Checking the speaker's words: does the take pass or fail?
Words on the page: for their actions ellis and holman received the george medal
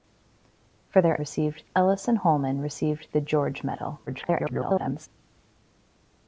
fail